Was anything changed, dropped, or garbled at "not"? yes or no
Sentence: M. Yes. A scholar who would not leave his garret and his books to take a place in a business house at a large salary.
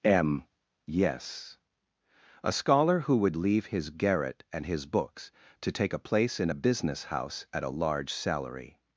yes